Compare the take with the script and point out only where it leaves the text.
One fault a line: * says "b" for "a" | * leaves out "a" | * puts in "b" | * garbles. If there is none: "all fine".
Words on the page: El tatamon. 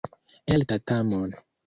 all fine